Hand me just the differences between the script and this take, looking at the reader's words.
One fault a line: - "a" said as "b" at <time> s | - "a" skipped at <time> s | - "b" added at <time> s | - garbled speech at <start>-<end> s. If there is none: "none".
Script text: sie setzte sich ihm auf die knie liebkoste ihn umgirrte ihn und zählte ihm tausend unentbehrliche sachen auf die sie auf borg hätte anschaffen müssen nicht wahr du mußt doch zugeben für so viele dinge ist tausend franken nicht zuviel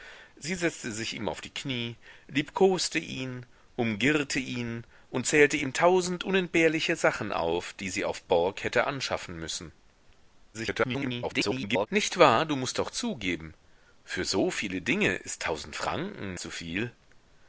- garbled speech at 10.5-11.9 s
- "nicht" skipped at 16.4 s